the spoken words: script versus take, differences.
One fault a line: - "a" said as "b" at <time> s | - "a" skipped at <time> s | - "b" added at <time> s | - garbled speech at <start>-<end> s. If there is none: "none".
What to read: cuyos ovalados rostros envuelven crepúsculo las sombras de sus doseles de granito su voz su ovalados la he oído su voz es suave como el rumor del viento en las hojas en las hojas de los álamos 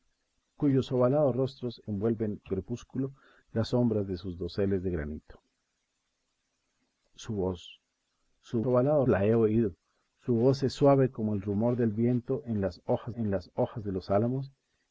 none